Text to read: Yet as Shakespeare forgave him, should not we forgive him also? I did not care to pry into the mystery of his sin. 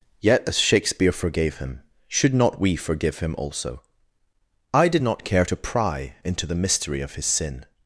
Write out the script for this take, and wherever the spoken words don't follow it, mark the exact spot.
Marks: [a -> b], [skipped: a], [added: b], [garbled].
Yet as Shakespeare forgave him, should not we forgive him also? I did not care to pry into the mystery of his sin.